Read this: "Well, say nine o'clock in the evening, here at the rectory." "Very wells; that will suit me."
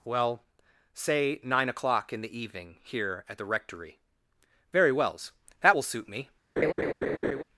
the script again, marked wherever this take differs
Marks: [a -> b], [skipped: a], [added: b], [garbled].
"Well, say nine o'clock in the evening, here at the rectory." "Very wells; that will suit me."